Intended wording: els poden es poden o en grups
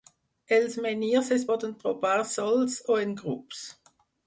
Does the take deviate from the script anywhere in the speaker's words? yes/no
yes